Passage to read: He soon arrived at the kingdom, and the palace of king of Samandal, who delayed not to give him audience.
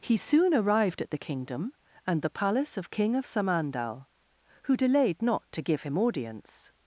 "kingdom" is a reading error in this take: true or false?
false